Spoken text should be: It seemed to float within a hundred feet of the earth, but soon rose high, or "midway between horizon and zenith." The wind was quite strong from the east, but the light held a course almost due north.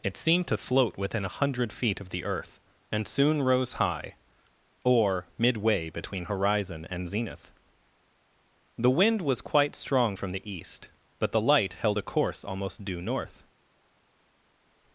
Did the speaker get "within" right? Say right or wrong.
right